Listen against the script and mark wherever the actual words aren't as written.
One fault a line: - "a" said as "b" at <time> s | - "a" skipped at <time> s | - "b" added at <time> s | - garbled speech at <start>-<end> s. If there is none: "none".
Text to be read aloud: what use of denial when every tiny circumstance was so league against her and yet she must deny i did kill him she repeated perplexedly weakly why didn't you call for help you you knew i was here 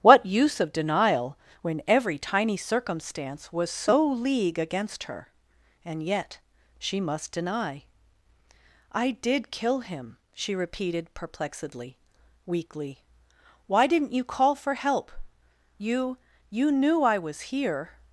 none